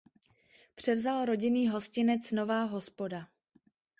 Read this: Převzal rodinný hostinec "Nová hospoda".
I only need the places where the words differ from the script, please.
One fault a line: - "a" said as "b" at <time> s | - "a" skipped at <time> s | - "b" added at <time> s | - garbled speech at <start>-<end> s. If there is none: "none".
none